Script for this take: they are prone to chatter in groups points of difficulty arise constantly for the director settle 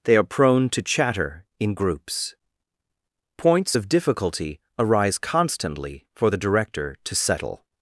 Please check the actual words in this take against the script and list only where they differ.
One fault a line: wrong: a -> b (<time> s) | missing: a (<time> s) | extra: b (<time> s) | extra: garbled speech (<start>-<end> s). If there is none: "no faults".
extra: to (7.0 s)